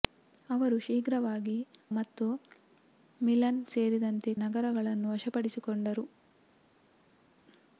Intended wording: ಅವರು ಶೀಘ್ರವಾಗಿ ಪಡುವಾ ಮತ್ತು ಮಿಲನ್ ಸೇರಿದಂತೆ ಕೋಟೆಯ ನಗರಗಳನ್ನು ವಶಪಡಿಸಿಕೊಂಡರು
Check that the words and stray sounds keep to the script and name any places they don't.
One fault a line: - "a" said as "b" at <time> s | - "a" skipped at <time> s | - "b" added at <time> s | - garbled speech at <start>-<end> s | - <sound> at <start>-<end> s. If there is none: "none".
- "ಪಡುವಾ" skipped at 1.6 s
- "ಕೋಟೆಯ" skipped at 4.3 s